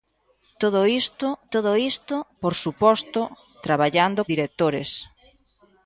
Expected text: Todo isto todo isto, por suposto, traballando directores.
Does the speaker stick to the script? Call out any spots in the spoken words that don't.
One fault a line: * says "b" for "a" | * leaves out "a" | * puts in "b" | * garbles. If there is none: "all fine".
all fine